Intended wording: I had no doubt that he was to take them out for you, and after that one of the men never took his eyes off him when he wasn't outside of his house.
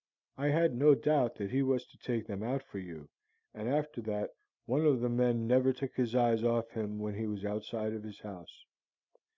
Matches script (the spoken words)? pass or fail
fail